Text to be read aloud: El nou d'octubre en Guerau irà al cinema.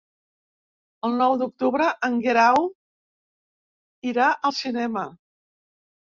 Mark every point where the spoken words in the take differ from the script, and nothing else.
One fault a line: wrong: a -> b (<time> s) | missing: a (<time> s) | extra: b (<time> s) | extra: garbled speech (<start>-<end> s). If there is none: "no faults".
no faults